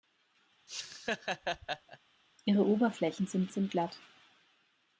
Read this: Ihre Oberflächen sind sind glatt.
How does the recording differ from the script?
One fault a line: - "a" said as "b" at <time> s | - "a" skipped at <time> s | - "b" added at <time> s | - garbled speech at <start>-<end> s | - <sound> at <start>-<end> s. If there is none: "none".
- laugh at 0.7-2.0 s